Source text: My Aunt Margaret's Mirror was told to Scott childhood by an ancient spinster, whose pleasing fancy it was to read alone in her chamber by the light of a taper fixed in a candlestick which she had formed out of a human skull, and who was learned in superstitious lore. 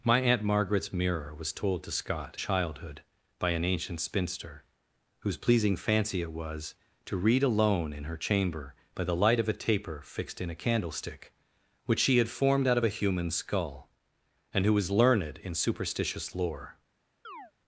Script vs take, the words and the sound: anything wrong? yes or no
yes